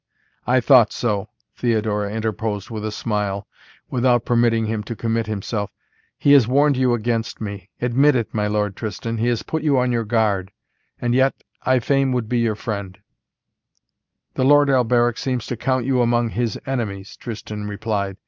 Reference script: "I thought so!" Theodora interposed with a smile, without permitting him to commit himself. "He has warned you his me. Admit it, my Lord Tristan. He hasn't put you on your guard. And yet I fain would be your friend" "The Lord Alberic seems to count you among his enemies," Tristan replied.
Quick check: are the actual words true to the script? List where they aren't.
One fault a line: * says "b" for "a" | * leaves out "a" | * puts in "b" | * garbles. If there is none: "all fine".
* says "against" for "his"
* says "has" for "hasn't"